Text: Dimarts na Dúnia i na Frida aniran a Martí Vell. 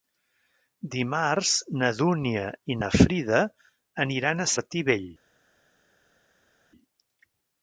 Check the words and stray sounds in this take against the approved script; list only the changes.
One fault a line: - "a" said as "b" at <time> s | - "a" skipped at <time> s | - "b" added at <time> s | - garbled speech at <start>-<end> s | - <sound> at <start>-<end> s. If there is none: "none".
none